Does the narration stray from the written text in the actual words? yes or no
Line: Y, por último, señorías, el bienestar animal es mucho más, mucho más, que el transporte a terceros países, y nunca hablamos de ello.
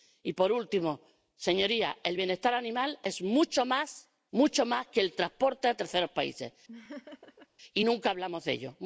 no